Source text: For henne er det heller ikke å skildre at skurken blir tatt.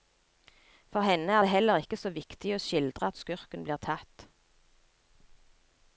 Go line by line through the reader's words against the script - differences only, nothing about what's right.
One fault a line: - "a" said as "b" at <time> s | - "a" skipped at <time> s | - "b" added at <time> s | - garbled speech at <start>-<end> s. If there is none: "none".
- "så viktig" added at 2.0 s